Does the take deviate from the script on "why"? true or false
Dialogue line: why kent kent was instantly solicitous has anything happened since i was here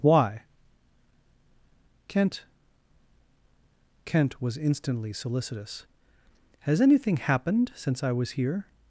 false